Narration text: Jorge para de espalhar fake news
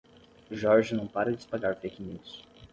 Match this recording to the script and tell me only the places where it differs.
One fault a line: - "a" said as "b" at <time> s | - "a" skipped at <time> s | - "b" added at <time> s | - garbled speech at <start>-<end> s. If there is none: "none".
- "não" added at 0.9 s